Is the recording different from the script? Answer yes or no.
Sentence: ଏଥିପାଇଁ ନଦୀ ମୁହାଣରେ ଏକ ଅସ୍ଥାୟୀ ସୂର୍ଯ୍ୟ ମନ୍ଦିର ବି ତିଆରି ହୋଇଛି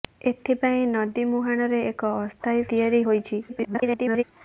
yes